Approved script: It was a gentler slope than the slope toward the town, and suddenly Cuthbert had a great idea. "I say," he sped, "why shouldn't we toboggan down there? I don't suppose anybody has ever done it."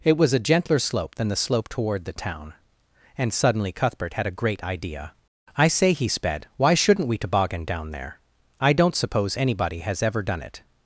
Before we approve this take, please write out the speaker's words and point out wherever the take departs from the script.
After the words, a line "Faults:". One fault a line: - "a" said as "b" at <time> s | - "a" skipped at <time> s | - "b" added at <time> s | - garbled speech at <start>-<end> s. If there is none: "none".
It was a gentler slope than the slope toward the town, and suddenly Cuthbert had a great idea. "I say," he sped, "why shouldn't we toboggan down there? I don't suppose anybody has ever done it."
Faults:
none